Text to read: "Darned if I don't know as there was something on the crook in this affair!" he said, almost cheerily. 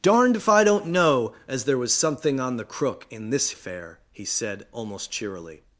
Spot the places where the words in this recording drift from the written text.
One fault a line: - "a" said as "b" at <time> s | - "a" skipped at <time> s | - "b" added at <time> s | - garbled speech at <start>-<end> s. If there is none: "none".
none